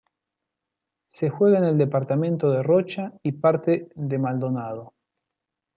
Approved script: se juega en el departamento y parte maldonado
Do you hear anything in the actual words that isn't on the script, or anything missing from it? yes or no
yes